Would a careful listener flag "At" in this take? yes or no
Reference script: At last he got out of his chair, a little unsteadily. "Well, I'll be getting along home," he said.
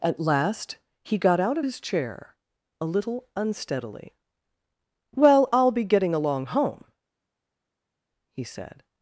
no